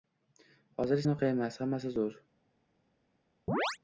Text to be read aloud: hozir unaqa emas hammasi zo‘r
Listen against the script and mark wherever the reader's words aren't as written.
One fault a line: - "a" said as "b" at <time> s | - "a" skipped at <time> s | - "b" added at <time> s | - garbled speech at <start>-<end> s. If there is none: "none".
none